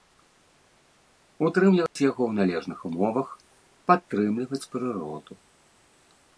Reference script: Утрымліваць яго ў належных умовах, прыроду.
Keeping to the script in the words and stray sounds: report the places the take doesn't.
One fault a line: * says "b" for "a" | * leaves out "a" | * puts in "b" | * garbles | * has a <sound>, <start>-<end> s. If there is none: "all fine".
* has a dropout, 1.9-2.0 s
* puts in "падтрымліваць"